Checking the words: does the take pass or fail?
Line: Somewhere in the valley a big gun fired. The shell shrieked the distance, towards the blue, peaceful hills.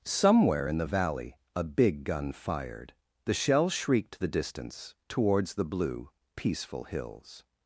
pass